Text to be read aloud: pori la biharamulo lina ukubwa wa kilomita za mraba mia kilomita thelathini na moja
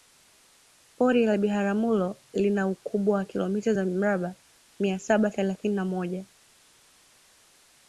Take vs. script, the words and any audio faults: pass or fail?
fail